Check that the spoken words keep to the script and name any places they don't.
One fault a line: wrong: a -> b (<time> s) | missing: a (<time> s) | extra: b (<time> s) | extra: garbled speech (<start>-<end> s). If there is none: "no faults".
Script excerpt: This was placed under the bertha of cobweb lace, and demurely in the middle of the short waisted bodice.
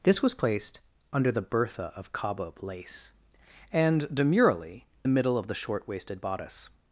missing: in (4.9 s)